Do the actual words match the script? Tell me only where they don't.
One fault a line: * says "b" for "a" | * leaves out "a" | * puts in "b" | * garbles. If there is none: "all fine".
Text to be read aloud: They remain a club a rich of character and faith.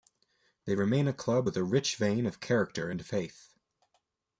* puts in "with"
* puts in "vein"